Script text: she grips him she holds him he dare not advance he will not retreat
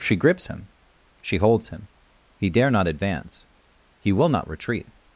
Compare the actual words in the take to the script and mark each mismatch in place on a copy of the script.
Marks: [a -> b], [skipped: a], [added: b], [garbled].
she grips him she holds him he dare not advance he will not retreat